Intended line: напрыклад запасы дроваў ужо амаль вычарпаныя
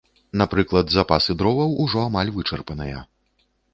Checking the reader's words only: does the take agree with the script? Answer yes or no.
yes